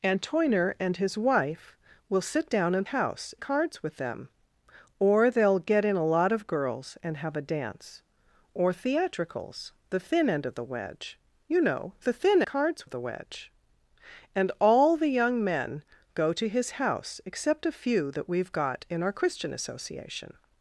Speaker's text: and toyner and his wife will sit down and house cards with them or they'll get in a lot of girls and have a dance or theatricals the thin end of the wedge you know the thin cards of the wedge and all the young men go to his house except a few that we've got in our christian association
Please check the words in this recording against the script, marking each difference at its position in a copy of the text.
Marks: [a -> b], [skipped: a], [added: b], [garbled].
and toyner and his wife will sit down and house cards with them or they'll get in a lot of girls and have a dance or theatricals the thin end of the wedge you know the thin cards of the wedge and all the young men go to his house except a few that we've got in our christian association